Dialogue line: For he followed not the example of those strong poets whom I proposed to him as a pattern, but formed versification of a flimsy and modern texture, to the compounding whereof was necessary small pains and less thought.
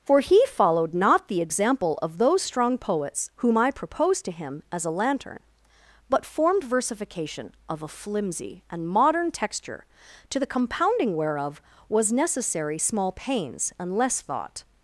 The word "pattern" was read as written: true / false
false